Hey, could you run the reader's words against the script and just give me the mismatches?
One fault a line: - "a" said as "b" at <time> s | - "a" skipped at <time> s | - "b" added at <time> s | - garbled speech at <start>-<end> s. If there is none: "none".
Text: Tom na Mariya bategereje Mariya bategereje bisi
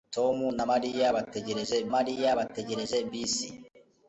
none